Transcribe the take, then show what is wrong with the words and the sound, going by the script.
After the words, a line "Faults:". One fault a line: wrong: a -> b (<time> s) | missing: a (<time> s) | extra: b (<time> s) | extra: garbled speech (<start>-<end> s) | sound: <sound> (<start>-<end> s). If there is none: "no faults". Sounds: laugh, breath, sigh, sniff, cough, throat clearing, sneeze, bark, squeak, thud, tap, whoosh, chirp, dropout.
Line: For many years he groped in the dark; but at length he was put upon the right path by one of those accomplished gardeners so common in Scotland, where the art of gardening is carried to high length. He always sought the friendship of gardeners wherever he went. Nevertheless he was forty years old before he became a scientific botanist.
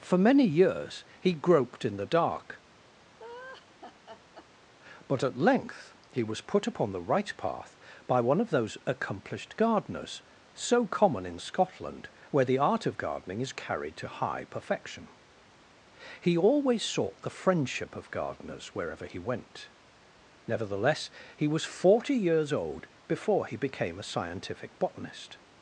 For many years he groped in the dark; but at length he was put upon the right path by one of those accomplished gardeners so common in Scotland, where the art of gardening is carried to high perfection. He always sought the friendship of gardeners wherever he went. Nevertheless he was forty years old before he became a scientific botanist.
Faults:
sound: laugh (3.2-4.5 s)
wrong: length -> perfection (14.4 s)